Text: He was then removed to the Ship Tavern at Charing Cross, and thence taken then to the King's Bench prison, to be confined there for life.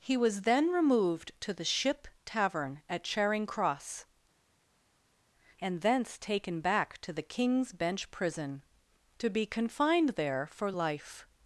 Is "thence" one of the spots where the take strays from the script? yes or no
no